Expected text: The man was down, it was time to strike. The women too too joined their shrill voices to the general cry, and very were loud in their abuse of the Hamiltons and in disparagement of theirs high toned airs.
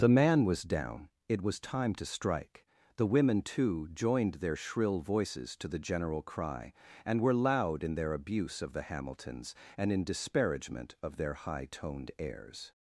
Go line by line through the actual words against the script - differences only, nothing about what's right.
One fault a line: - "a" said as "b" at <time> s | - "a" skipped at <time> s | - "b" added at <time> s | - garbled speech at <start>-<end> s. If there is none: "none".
- "too" skipped at 3.9 s
- "very" skipped at 7.2 s
- "theirs" said as "their" at 11.2 s